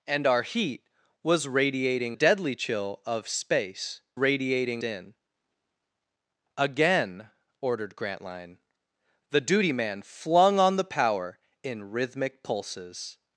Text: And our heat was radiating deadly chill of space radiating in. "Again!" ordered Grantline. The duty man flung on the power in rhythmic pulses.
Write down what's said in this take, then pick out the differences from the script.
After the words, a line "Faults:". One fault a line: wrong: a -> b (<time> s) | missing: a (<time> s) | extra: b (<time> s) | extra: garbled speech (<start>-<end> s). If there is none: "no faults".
And our heat was radiating deadly chill of space radiating in. "Again!" ordered Grantline. The duty man flung on the power in rhythmic pulses.
Faults:
no faults